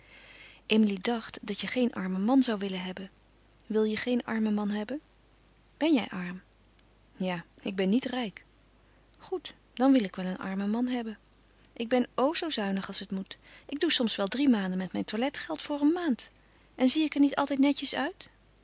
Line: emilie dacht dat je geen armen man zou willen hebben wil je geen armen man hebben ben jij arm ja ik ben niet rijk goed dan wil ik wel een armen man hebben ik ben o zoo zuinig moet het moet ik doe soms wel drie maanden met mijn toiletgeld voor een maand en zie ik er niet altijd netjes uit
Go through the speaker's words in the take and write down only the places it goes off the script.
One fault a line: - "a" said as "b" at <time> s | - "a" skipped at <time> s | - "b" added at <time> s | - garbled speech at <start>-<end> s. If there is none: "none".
- "moet" said as "als" at 12.9 s